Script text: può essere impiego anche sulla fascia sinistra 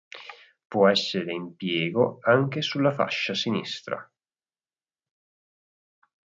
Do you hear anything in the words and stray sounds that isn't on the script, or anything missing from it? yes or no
no